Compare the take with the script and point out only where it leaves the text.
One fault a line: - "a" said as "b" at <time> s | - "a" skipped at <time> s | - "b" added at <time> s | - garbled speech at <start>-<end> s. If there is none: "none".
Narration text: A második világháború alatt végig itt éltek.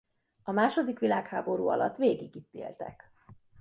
none